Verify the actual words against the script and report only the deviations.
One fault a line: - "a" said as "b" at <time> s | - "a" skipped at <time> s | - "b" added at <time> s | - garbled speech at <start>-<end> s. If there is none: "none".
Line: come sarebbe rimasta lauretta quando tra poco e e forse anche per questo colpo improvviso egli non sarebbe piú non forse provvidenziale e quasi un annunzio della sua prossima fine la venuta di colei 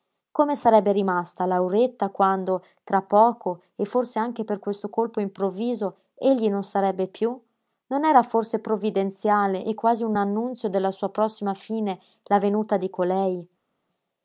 - "e" skipped at 3.9 s
- "era" added at 8.0 s